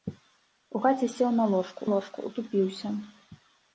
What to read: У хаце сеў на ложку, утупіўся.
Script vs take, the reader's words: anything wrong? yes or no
yes